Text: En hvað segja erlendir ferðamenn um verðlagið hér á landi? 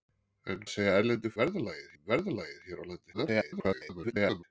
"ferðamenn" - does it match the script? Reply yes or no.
no